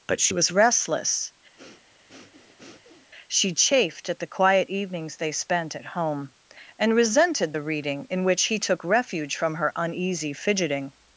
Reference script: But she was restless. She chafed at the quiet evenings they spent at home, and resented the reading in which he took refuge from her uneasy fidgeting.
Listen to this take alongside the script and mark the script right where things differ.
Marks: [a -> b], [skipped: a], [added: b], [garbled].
But she was restless. She chafed at the quiet evenings they spent at home, and resented the reading in which he took refuge from her uneasy fidgeting.